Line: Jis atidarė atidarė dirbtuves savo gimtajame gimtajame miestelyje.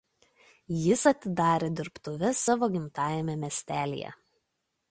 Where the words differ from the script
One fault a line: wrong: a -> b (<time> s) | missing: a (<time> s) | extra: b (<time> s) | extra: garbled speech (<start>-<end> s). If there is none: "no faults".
missing: atidarė (1.7 s)
missing: gimtajame (3.4 s)